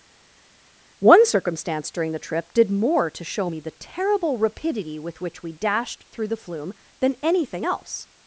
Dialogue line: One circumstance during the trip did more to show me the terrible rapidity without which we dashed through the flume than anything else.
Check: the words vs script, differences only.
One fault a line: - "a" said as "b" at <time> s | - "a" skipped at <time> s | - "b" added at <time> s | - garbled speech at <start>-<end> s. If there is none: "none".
- "without" said as "with" at 5.0 s